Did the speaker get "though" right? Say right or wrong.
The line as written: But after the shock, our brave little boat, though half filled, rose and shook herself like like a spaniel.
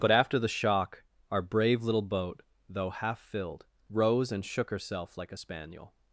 right